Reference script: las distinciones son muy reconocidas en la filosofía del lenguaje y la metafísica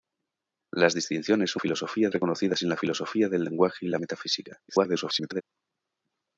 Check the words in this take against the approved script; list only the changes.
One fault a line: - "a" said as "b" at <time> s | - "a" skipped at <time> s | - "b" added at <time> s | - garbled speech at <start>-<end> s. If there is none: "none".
- "muy" said as "filosofía" at 1.6 s
- garbled speech at 4.7-5.4 s